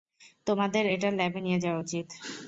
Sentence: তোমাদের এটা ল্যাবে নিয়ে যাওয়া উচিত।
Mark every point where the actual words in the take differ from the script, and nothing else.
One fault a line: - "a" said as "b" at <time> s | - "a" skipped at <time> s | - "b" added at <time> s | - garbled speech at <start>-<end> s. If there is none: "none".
none